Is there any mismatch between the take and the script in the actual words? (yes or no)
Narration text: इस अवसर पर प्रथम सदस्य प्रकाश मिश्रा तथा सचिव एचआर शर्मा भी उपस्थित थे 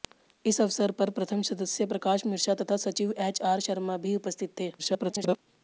yes